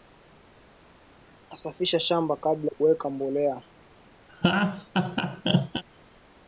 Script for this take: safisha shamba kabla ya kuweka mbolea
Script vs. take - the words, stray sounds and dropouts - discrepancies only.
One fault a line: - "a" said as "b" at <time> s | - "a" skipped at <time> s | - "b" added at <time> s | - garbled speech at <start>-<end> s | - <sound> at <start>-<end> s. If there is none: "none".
- "ya" skipped at 2.7 s
- laugh at 4.3-5.8 s